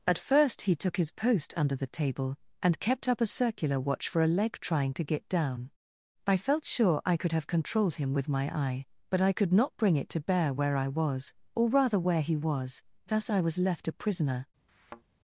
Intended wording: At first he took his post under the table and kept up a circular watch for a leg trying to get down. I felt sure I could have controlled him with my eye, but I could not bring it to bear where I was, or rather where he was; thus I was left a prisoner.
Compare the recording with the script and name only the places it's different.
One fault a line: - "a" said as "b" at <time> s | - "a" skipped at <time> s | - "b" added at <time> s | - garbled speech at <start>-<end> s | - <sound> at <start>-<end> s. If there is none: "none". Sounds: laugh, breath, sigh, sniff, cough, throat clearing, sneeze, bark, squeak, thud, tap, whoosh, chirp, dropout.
- thud at 14.7-15.0 s